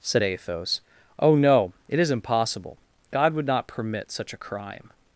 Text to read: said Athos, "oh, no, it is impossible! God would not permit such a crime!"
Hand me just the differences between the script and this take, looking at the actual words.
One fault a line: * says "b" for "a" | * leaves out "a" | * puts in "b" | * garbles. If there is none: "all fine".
all fine